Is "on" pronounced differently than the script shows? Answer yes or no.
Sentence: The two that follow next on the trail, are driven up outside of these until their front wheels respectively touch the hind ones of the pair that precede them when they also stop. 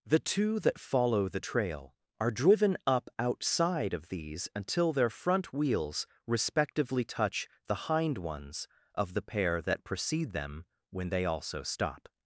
yes